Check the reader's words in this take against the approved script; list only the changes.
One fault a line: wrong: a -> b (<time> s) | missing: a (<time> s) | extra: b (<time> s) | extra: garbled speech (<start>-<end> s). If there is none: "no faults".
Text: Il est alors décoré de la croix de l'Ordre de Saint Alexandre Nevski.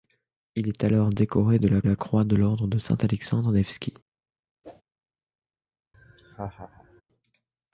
extra: la (1.8 s)